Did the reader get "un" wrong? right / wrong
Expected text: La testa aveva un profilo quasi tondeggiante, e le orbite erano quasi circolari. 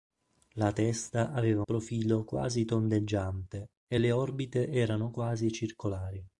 wrong